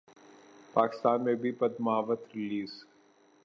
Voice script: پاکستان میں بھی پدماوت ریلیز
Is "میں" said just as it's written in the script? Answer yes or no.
yes